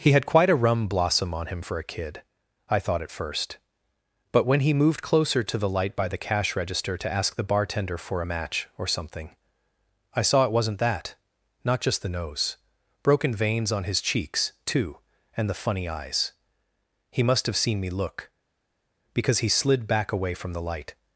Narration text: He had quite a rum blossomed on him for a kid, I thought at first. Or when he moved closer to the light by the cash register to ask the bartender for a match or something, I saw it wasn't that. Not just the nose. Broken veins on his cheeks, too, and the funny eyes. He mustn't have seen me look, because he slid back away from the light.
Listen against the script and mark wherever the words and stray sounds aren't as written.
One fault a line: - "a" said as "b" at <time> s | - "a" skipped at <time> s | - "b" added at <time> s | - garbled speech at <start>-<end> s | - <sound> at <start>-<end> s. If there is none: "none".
- "blossomed" said as "blossom" at 0.9 s
- "Or" said as "But" at 4.3 s
- "mustn't" said as "must" at 17.2 s